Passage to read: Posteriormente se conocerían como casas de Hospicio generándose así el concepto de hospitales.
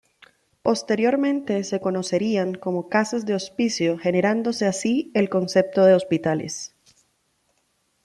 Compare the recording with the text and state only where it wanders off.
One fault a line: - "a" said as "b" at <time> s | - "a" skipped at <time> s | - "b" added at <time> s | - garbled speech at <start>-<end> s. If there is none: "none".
none